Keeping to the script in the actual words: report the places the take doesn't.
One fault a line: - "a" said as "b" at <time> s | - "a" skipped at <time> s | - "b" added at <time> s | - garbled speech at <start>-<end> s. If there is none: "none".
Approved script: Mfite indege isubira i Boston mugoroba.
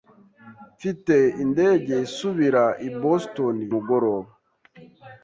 none